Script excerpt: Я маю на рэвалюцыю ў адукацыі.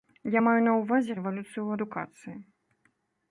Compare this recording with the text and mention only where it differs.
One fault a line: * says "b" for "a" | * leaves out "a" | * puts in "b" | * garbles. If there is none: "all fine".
* puts in "ўвазе"